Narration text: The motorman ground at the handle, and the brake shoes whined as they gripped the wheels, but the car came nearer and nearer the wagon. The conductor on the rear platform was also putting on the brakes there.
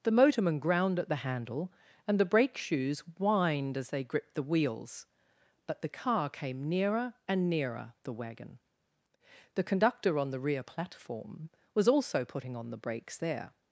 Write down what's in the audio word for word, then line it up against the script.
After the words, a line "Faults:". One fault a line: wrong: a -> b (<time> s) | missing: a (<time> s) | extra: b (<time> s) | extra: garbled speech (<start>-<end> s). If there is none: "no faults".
The motorman ground at the handle, and the brake shoes whined as they gripped the wheels, but the car came nearer and nearer the wagon. The conductor on the rear platform was also putting on the brakes there.
Faults:
no faults